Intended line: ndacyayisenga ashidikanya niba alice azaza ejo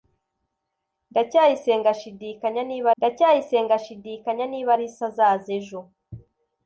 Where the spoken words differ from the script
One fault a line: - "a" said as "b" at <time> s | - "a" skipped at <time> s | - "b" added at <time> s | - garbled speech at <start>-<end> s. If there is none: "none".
- "ndacyayisenga ashidikanya niba" added at 3.0 s